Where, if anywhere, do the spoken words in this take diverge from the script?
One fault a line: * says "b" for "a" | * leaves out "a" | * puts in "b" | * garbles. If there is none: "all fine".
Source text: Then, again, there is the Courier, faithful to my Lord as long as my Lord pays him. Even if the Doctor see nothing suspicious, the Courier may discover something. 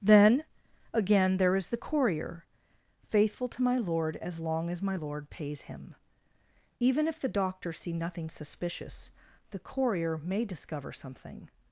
all fine